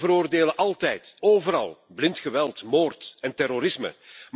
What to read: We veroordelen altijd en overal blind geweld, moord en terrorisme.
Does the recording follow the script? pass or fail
fail